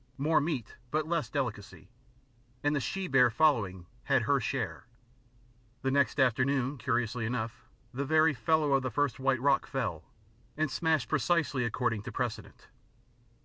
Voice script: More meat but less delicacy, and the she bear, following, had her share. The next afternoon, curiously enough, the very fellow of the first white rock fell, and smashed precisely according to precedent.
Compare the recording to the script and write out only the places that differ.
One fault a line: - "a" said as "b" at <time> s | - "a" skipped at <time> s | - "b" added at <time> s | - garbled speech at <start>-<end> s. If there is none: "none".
none